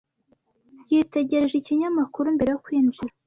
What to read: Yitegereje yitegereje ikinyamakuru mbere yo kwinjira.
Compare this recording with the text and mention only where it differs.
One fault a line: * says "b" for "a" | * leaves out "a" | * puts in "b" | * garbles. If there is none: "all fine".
* leaves out "yitegereje"